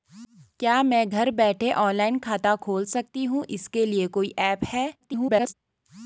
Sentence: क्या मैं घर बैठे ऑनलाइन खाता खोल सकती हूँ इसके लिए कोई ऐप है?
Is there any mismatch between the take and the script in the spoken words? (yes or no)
yes